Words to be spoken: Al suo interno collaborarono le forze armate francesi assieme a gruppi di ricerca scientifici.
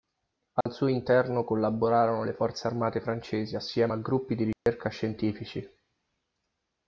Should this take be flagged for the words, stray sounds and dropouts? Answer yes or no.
yes